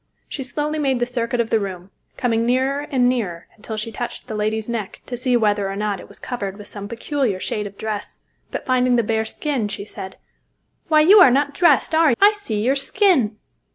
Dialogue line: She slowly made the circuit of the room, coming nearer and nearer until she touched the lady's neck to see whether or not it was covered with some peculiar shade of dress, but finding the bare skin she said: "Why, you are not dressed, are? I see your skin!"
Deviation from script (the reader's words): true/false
false